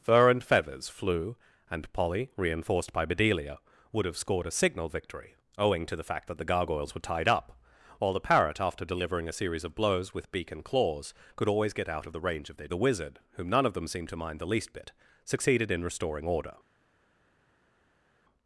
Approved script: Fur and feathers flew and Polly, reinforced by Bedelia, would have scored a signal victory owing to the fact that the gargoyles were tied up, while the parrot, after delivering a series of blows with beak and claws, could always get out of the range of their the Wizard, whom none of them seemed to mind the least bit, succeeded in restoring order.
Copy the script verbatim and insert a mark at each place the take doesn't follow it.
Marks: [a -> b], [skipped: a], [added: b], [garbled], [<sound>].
Fur and feathers flew and Polly, reinforced by Bedelia, would have scored a signal victory owing to the fact that the gargoyles were tied up, while the parrot, after delivering a series of blows with beak and claws, could always get out of the range of their the Wizard, whom none of them seemed to mind the least bit, succeeded in restoring order.